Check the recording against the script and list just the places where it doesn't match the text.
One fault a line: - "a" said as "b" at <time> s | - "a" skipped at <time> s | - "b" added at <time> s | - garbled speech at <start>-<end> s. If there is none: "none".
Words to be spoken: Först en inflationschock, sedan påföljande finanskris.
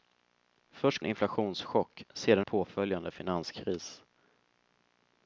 none